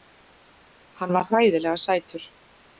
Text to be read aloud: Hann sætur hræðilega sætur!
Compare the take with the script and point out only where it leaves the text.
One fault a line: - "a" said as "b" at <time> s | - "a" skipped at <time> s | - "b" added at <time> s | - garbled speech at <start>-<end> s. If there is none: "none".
- "sætur" said as "var" at 1.2 s